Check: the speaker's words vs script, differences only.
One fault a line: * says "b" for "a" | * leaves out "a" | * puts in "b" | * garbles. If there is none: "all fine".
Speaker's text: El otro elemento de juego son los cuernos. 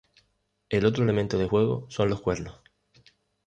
all fine